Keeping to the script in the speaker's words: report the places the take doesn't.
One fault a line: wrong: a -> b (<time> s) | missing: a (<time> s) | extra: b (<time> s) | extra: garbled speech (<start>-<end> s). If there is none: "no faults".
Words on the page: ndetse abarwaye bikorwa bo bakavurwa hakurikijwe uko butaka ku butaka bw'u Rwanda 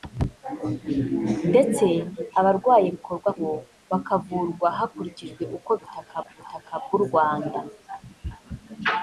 no faults